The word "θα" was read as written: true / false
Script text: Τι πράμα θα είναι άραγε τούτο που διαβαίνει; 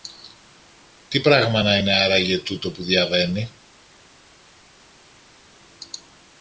false